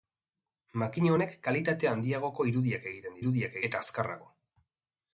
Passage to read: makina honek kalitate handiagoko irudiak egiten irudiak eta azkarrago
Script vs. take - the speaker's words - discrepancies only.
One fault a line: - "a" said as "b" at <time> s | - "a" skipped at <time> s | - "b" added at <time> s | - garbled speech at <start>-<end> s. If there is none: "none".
none